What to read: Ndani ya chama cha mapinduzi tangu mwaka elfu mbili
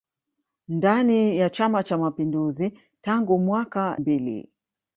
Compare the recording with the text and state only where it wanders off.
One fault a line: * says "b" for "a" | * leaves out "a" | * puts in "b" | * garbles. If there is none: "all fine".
* leaves out "elfu"